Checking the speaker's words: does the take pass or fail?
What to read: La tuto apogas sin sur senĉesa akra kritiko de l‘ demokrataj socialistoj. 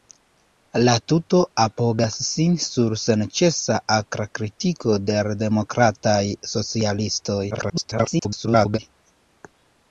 fail